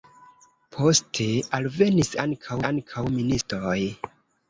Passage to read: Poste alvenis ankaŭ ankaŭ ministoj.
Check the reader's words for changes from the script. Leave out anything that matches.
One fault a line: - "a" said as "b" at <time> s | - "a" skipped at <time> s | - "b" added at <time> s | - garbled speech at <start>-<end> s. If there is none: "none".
none